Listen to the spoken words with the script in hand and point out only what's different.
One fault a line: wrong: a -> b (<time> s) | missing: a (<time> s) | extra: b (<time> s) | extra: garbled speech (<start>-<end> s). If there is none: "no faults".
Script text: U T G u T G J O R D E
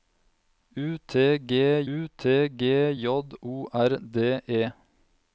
no faults